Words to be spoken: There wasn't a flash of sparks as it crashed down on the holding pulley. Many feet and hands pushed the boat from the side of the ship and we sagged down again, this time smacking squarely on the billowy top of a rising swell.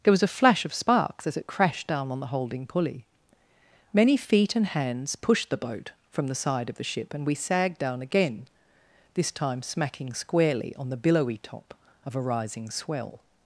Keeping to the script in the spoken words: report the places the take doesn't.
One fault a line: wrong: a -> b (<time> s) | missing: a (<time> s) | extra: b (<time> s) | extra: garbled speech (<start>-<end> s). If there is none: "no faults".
wrong: wasn't -> was (0.1 s)